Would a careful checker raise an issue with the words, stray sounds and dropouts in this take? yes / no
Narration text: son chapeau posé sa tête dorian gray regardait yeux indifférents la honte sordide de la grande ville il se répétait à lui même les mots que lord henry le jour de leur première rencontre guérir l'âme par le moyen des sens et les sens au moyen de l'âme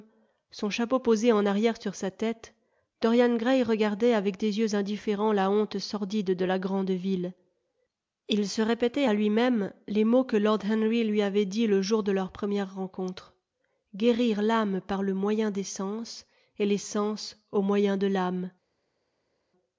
yes